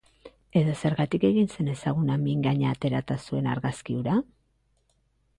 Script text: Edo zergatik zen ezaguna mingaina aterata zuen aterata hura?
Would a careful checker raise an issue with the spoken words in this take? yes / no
yes